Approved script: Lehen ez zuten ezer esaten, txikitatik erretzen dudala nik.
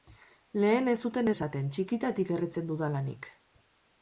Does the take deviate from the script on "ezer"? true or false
true